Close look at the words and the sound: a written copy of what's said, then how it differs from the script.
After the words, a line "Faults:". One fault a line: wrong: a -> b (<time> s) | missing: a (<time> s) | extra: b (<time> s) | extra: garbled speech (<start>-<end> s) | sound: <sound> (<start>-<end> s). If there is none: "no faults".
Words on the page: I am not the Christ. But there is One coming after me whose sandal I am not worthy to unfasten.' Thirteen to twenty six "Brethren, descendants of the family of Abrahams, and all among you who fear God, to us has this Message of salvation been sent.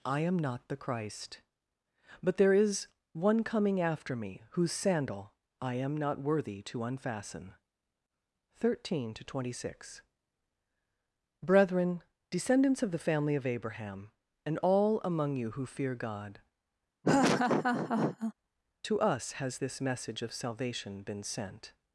I am not the Christ. But there is One coming after me whose sandal I am not worthy to unfasten.' Thirteen to twenty six "Brethren, descendants of the family of Abraham, and all among you who fear God, to us has this Message of salvation been sent.
Faults:
wrong: Abrahams -> Abraham (13.5 s)
sound: laugh (17.0-18.3 s)